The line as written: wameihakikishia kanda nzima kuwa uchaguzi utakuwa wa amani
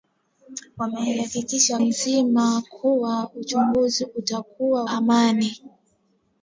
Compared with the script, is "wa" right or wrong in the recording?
wrong